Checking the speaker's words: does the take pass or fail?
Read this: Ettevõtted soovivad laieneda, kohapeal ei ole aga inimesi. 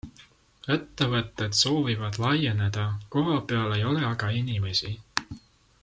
pass